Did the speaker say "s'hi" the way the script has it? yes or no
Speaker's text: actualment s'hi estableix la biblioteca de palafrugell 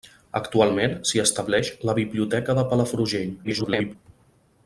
yes